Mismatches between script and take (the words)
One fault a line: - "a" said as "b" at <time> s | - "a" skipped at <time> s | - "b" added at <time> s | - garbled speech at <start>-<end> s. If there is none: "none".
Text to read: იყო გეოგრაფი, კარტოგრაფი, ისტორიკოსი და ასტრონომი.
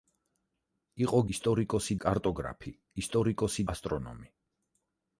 - "გეოგრაფი" said as "ისტორიკოსი" at 1.4 s
- "და" skipped at 3.7 s